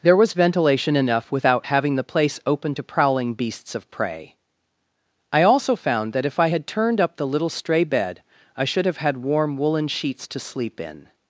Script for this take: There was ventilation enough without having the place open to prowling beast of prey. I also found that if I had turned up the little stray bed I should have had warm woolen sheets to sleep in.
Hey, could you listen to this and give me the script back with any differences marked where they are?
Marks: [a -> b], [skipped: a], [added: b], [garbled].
There was ventilation enough without having the place open to prowling [beast -> beasts] of prey. I also found that if I had turned up the little stray bed I should have had warm woolen sheets to sleep in.